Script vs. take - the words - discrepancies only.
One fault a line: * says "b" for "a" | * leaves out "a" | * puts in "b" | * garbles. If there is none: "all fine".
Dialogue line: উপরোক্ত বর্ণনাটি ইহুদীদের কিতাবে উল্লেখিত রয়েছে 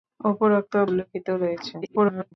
* leaves out "বর্ণনাটি ইহুদীদের কিতাবে"
* garbles